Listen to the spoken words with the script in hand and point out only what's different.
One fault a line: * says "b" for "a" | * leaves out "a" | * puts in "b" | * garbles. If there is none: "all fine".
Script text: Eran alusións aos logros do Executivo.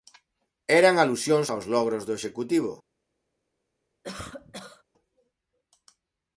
all fine